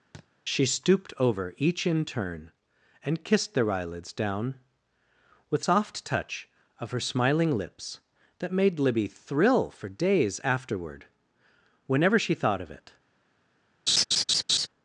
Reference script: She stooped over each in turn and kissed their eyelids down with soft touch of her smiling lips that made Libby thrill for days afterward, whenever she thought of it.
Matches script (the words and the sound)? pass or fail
fail